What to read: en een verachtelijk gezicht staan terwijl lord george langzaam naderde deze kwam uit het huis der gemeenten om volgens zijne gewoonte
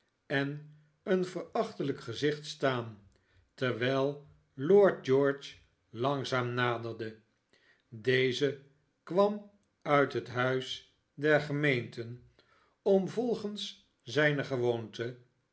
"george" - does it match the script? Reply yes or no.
yes